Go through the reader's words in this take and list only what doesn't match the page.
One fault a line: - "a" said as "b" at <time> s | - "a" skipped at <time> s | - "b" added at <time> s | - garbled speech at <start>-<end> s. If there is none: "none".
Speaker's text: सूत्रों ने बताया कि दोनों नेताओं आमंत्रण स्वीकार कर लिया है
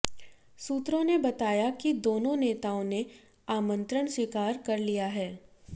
- "ने" added at 2.8 s